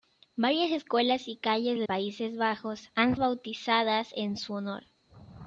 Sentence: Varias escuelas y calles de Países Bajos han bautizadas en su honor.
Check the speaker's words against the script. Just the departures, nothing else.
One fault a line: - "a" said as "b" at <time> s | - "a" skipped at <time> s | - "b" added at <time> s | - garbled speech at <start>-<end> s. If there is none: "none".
none